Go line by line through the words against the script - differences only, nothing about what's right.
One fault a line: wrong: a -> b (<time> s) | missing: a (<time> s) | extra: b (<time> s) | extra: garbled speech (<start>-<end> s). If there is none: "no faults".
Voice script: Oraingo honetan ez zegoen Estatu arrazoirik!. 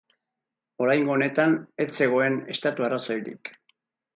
no faults